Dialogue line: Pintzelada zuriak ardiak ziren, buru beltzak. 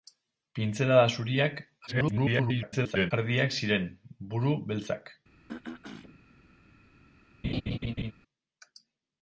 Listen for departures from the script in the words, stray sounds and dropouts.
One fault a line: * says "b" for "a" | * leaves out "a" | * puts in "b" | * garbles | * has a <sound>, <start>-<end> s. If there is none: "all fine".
* garbles
* has a throat clearing, 5.5-6.2 s
* has a laugh, 7.4-8.1 s